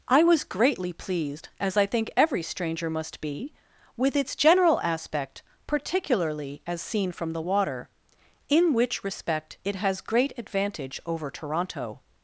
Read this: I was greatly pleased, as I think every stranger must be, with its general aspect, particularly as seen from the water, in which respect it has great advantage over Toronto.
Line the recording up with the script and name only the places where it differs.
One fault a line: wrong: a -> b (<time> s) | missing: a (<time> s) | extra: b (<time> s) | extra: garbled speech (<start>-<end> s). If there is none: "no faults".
no faults